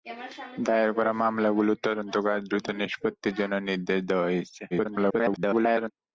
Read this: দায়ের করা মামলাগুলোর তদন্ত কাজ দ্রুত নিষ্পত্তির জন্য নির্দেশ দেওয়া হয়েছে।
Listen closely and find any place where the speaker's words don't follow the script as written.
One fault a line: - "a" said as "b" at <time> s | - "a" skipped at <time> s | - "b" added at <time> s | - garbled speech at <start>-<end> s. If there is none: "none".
- garbled speech at 4.7-5.9 s